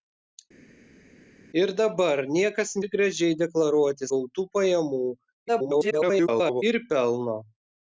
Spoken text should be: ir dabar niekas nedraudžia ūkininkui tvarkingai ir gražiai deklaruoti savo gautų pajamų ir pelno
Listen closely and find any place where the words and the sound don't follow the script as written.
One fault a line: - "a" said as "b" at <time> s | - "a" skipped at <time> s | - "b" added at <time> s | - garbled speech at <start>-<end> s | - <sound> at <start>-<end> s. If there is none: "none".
- "nedraudžia ūkininkui tvarkingai" skipped at 2.7 s
- "savo" skipped at 4.1 s
- garbled speech at 5.5-6.6 s